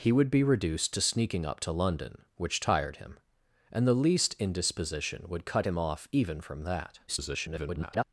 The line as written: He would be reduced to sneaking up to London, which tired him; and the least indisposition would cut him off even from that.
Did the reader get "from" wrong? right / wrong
right